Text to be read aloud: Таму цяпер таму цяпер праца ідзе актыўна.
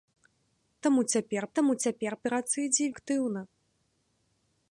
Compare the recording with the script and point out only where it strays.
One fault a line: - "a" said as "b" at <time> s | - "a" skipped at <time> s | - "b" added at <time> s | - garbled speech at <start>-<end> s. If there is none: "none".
none